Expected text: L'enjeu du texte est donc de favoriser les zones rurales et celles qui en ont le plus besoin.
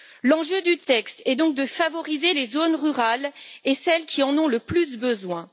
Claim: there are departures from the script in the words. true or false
false